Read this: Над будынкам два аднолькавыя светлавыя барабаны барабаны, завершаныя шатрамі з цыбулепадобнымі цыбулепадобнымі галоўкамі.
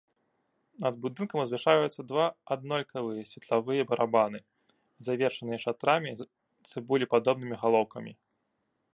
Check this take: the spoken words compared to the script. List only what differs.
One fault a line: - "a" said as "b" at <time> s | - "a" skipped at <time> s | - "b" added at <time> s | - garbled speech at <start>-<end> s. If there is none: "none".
- "узвышаюцца" added at 1.4 s
- "барабаны" skipped at 4.4 s
- "цыбулепадобнымі" skipped at 7.6 s